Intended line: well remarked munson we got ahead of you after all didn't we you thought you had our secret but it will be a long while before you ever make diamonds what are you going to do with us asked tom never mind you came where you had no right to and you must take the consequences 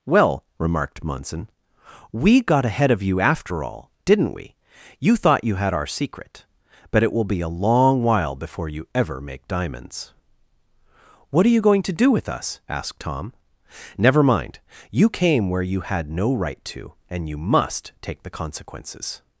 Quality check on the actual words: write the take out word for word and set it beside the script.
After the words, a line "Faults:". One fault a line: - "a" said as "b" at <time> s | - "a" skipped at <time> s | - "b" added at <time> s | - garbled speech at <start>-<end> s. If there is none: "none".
well remarked munson we got ahead of you after all didn't we you thought you had our secret but it will be a long while before you ever make diamonds what are you going to do with us asked tom never mind you came where you had no right to and you must take the consequences
Faults:
none